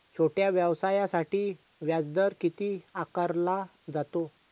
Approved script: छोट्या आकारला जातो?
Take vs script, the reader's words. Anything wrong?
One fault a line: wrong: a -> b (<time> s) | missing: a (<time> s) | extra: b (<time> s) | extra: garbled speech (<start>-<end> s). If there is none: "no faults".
extra: व्यवसायासाठी व्याजदर किती (0.5 s)